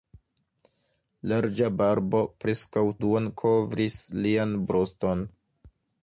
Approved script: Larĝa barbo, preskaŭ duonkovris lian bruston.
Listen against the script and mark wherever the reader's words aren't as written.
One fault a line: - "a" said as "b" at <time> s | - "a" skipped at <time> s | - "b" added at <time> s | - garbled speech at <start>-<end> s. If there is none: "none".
none